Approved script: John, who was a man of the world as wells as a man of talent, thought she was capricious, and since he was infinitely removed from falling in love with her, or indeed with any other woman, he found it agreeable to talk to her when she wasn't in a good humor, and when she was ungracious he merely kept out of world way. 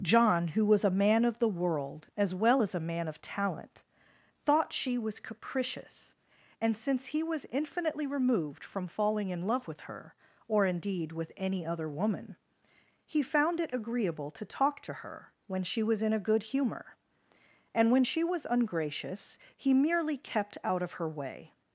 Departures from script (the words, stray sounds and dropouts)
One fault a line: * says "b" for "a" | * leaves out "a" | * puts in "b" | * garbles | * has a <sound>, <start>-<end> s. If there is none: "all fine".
* says "well" for "wells"
* says "was" for "wasn't"
* says "her" for "world"